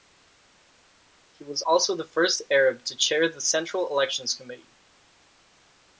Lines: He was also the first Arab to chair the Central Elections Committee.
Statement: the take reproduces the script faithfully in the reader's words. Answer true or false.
true